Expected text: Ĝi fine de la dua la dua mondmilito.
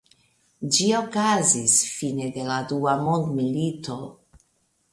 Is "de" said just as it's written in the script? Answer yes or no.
yes